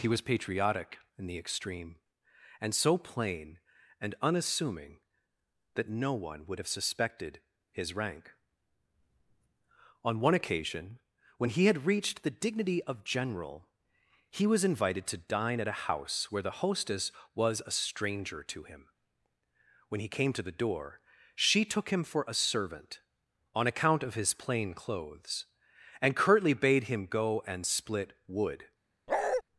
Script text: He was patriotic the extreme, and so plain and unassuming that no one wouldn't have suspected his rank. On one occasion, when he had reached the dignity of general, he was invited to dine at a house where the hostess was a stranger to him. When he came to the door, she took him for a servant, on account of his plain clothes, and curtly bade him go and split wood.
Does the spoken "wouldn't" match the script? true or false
false